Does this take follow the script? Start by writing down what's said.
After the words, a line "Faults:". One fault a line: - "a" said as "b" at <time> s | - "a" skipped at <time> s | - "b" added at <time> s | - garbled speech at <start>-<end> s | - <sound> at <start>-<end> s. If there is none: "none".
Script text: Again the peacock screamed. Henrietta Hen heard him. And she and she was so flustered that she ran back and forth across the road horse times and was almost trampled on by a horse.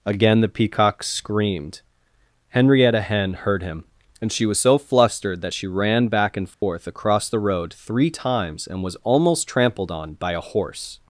Again the peacock screamed. Henrietta Hen heard him. And she was so flustered that she ran back and forth across the road three times and was almost trampled on by a horse.
Faults:
- "and she" skipped at 4.5 s
- dropout at 6.5-6.6 s
- "horse" said as "three" at 7.7 s